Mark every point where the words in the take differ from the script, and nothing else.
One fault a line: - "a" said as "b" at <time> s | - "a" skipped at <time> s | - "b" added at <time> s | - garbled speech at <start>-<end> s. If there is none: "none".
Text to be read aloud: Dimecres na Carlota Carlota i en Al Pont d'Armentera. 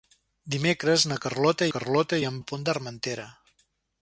none